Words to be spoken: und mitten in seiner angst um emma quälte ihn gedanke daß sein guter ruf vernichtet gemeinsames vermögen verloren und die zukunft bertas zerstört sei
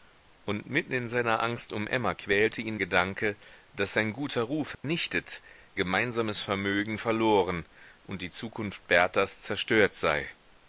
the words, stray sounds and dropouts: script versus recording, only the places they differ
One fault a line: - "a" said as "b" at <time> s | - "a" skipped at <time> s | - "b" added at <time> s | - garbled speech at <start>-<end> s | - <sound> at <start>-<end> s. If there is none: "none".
- dropout at 4.7-4.8 s